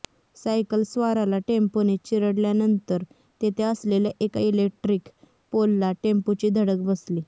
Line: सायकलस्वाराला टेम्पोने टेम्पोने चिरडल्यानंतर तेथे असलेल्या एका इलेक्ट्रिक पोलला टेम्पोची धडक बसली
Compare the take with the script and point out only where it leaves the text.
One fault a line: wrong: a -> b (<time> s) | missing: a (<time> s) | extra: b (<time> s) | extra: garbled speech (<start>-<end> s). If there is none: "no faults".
missing: टेम्पोने (2.0 s)